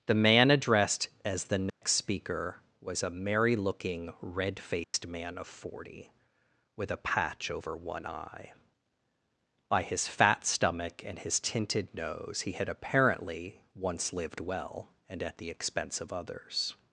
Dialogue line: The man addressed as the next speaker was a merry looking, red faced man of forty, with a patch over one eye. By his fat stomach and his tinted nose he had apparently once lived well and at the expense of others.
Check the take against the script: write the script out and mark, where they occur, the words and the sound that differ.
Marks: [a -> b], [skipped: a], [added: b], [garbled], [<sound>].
The man addressed as the next [dropout] speaker was a merry looking, red faced [dropout] man of forty, with a patch over one eye. By his fat stomach and his tinted nose he had apparently once lived well and at the expense of others.